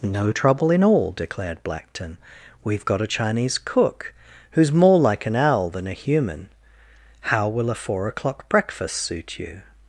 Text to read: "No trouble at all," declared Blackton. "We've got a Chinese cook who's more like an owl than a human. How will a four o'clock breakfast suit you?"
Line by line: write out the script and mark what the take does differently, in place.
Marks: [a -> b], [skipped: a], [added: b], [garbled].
"No trouble [at -> in] all," declared Blackton. "We've got a Chinese cook who's more like an owl than a human. How will a four o'clock breakfast suit you?"